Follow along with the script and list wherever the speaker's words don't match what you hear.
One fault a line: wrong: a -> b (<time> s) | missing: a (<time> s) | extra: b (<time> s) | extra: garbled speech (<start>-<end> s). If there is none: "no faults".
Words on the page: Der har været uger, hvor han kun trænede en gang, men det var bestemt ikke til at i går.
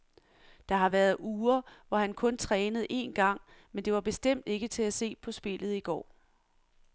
extra: se på spillet (4.9 s)